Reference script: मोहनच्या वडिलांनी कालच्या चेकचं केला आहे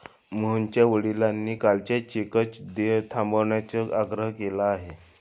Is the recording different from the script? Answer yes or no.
yes